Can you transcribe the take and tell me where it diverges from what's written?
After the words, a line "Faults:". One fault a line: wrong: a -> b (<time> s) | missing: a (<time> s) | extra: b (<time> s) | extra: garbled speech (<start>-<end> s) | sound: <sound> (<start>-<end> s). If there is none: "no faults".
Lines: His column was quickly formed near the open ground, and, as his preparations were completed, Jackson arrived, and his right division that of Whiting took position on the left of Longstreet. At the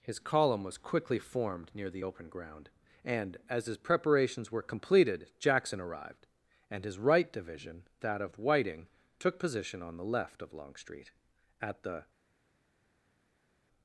His column was quickly formed near the open ground, and, as his preparations were completed, Jackson arrived, and his right division that of Whiting took position on the left of Longstreet. At the
Faults:
no faults